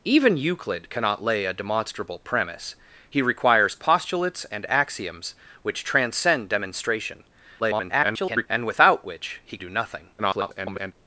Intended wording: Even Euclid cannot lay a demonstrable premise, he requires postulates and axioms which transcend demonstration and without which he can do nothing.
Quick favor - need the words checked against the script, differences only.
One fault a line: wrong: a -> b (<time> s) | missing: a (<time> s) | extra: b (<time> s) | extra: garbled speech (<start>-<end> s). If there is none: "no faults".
extra: garbled speech (7.6-8.5 s)
missing: can (9.6 s)
extra: garbled speech (10.2-10.9 s)